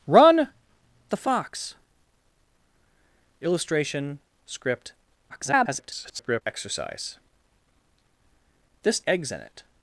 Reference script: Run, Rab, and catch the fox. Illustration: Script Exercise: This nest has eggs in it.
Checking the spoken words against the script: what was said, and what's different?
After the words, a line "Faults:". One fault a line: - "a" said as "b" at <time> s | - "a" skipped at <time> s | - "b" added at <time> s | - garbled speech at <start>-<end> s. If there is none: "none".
Run, The fox. Illustration: Script [garbled] Exercise: This eggs in it.
Faults:
- "Rab and catch" skipped at 0.5 s
- garbled speech at 5.3-6.4 s
- "nest has" skipped at 9.1 s